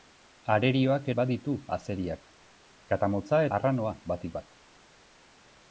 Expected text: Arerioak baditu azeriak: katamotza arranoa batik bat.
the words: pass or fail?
pass